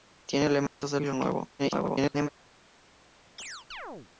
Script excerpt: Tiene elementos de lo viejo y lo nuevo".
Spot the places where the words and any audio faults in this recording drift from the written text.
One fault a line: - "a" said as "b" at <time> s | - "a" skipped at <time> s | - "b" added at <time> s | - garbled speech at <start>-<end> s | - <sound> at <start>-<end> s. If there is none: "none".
- dropout at 0.7-0.8 s
- "lo viejo" skipped at 1.0 s
- garbled speech at 1.6-2.3 s
- chirp at 3.4-4.1 s